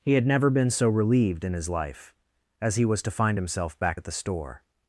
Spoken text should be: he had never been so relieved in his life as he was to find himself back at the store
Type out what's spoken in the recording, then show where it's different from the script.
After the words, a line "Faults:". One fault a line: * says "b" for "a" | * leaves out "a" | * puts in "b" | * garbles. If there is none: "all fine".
he had never been so relieved in his life as he was to find himself back at the store
Faults:
all fine